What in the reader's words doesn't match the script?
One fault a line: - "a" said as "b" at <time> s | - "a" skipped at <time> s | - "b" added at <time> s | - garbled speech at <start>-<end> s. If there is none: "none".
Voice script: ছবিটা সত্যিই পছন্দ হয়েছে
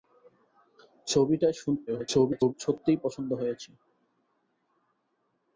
- garbled speech at 1.9-2.5 s